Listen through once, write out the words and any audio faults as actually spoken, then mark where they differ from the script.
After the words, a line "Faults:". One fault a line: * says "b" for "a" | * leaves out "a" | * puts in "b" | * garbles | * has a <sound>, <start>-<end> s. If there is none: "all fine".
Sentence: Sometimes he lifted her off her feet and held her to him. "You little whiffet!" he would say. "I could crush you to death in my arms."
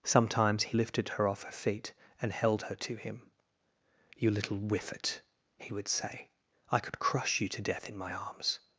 Sometimes he lifted her off her feet and held her to him. "You little whiffet!" he would say. "I could crush you to death in my arms."
Faults:
all fine